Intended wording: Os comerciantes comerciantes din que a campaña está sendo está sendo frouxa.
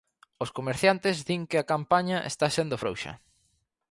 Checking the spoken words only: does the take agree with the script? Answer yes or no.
no